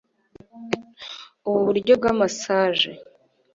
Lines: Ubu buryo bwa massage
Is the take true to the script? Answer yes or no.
yes